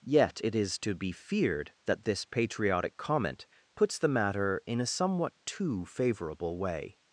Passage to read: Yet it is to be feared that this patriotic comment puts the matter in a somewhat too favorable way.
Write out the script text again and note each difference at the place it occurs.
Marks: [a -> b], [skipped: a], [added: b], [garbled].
Yet it is to be feared that this patriotic comment puts the matter in a somewhat too favorable way.